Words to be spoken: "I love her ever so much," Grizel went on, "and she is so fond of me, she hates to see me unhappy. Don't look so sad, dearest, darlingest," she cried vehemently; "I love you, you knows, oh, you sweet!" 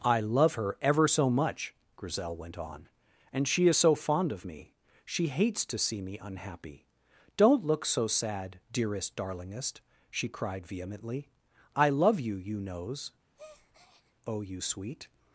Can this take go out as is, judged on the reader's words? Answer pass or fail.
pass